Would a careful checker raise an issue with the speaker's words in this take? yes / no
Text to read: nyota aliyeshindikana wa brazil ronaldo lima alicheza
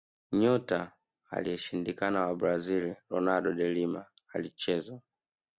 yes